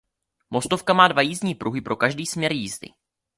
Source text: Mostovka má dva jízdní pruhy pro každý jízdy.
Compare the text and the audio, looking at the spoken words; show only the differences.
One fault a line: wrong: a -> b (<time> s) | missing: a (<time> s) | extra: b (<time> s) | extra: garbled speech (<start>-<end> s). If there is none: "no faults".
extra: směr (2.2 s)